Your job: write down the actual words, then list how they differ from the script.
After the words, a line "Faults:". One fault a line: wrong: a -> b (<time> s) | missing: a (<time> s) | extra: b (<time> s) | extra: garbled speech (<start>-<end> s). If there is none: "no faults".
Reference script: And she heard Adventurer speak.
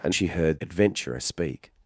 And she heard Adventurer speak.
Faults:
no faults